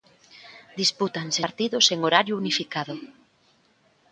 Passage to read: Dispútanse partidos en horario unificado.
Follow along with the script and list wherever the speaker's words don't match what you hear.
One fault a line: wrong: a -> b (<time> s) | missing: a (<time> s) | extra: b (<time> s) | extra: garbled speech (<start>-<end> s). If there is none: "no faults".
no faults